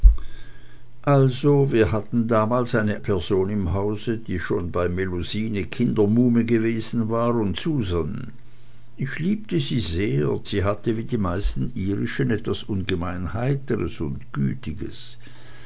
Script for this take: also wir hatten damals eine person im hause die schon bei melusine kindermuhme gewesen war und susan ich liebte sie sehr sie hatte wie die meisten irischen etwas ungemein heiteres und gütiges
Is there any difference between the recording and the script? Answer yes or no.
no